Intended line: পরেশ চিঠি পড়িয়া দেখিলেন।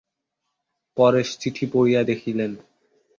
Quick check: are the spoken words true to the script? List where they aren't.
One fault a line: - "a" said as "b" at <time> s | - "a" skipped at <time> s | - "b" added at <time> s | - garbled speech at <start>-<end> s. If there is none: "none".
none